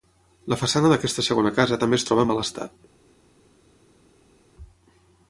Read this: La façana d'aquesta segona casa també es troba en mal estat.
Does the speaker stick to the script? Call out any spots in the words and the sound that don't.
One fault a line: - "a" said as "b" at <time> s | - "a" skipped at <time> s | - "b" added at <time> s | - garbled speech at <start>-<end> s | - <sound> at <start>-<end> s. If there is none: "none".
none